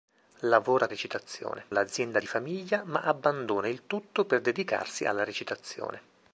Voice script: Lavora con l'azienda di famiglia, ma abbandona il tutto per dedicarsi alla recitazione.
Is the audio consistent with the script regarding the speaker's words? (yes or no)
no